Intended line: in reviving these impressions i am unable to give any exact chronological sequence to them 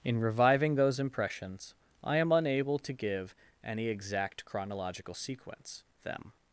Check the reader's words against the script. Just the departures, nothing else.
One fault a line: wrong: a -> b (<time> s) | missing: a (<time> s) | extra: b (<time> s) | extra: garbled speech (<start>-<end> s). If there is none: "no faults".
wrong: these -> those (0.8 s)
missing: to (5.8 s)